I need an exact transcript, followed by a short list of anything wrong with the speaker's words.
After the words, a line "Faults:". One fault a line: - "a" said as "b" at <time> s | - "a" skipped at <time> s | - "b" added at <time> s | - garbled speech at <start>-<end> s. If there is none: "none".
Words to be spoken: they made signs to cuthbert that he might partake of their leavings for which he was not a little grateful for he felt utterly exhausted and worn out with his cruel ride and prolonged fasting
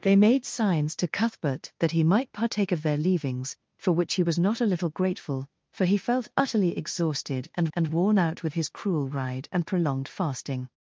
they made signs to cuthbert that he might partake of their leavings for which he was not a little grateful for he felt utterly exhausted and and worn out with his cruel ride and prolonged fasting
Faults:
- "and" added at 7.7 s